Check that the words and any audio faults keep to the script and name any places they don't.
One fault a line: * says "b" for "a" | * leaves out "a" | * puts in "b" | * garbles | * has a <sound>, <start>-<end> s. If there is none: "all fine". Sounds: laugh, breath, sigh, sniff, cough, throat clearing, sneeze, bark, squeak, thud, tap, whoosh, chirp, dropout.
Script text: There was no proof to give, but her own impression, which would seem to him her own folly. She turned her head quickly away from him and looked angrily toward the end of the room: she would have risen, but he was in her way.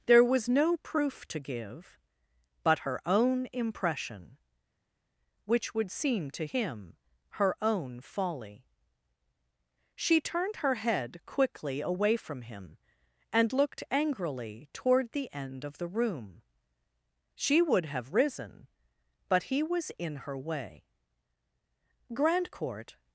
* puts in "Grandcourt"